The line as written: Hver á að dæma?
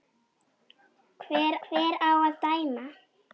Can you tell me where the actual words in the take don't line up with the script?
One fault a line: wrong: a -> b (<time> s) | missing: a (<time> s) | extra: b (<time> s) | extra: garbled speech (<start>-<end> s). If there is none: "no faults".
extra: hver (1.7 s)